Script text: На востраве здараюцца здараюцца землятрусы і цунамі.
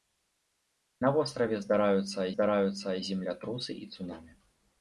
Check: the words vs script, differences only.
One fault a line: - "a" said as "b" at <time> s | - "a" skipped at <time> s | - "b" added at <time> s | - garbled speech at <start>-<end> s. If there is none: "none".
none